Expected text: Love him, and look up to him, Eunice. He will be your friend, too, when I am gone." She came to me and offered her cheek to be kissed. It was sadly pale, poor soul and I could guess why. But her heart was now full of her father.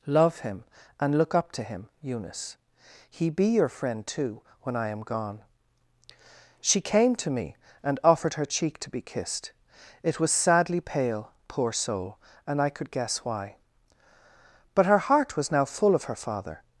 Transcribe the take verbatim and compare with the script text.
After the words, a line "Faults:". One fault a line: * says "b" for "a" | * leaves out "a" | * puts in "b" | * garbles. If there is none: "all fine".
Love him, and look up to him, Eunice. He be your friend, too, when I am gone." She came to me and offered her cheek to be kissed. It was sadly pale, poor soul and I could guess why. But her heart was now full of her father.
Faults:
* leaves out "will"